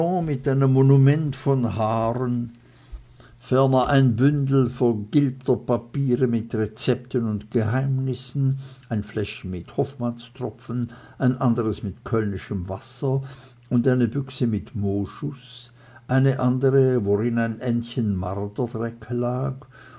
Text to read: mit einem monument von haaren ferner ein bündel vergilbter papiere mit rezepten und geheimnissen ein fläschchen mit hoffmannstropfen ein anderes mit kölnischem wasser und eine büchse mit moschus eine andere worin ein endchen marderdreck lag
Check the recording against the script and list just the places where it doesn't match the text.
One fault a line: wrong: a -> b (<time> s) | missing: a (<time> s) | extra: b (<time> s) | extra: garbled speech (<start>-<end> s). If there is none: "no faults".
no faults